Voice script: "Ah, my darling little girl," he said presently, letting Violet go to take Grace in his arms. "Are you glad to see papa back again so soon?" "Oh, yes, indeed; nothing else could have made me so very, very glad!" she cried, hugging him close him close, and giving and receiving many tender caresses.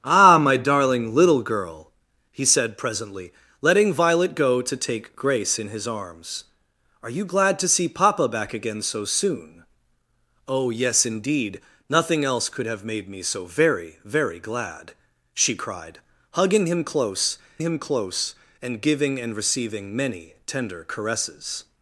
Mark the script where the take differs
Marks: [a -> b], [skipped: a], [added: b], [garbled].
"Ah, my darling little girl," he said presently, letting Violet go to take Grace in his arms. "Are you glad to see papa back again so soon?" "Oh, yes, indeed; nothing else could have made me so very, very glad!" she cried, hugging him close him close, and giving and receiving many tender caresses.